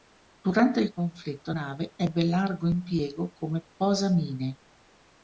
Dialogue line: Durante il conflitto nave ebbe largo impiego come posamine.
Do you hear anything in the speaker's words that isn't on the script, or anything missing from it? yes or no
no